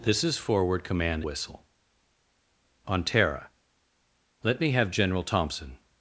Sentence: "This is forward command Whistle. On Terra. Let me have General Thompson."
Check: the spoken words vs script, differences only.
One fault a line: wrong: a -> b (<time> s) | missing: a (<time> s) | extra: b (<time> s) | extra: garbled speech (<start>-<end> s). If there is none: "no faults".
no faults